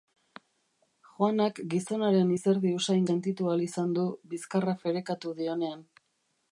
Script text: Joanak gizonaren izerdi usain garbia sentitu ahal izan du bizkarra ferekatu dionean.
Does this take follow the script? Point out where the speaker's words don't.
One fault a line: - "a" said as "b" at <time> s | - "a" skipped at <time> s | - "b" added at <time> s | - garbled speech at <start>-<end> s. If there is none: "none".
- "garbia" skipped at 3.1 s